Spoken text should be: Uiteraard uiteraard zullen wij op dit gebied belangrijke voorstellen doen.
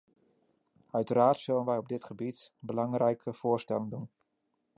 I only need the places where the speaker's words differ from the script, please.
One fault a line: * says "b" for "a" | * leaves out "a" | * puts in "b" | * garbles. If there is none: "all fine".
* leaves out "uiteraard"